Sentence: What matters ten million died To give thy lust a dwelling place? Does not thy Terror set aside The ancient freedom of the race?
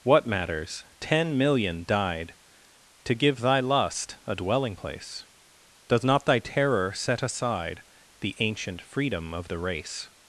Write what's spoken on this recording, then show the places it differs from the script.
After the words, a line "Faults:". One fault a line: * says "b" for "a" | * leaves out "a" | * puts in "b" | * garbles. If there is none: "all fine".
What matters ten million died To give thy lust a dwelling place? Does not thy Terror set aside The ancient freedom of the race?
Faults:
all fine